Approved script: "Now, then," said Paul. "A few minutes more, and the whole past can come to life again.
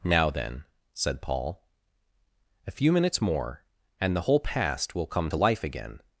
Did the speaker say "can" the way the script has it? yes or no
no